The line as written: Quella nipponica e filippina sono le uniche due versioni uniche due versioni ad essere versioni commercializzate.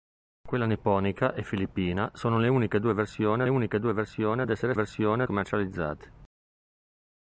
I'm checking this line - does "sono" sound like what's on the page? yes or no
yes